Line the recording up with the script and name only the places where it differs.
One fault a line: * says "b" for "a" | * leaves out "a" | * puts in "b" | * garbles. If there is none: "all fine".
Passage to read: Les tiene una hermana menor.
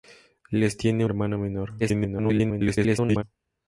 * leaves out "una"
* garbles